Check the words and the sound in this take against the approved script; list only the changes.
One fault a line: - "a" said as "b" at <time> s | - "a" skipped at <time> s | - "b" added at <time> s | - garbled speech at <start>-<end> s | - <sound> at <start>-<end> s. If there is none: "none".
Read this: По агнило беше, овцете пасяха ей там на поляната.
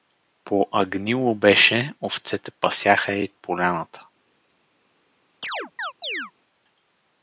- "там на" skipped at 3.3 s
- chirp at 5.4-6.3 s